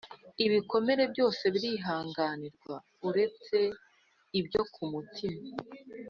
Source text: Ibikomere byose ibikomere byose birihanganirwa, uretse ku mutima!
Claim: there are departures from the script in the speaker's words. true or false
true